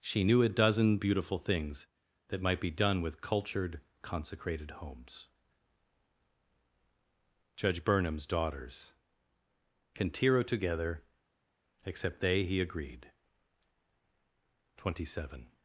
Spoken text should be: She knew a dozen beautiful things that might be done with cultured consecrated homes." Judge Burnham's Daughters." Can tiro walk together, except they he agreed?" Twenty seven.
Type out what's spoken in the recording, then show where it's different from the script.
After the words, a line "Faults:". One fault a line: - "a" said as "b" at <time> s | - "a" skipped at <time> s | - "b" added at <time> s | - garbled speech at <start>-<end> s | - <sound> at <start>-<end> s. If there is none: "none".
She knew a dozen beautiful things that might be done with cultured consecrated homes." Judge Burnham's Daughters." Can tiro together, except they he agreed?" Twenty seven.
Faults:
- "walk" skipped at 10.4 s